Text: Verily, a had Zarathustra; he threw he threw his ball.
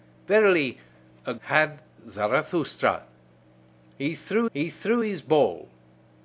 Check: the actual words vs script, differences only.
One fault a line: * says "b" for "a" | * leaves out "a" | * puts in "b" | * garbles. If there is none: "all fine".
all fine